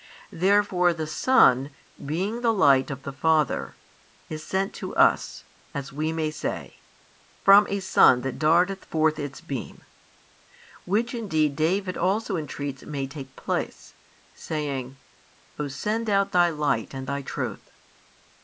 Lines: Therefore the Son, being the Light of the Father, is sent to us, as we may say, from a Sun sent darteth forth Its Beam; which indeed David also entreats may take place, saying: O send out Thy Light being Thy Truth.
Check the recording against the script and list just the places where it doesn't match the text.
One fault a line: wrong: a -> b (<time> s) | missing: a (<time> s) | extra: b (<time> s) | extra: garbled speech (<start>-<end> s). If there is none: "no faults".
wrong: sent -> that (8.2 s)
wrong: being -> and (16.9 s)